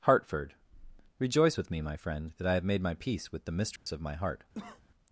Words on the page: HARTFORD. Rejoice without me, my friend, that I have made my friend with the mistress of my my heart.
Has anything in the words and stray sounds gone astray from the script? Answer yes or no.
yes